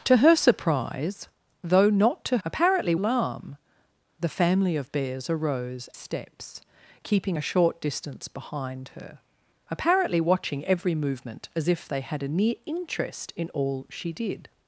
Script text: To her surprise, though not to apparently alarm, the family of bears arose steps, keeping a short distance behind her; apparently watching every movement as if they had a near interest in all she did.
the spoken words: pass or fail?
pass